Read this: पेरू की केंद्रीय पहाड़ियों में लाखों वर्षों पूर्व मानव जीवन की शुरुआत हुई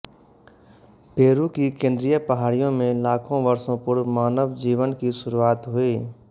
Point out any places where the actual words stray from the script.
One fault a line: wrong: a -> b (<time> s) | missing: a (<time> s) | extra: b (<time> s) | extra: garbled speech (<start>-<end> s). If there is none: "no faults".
no faults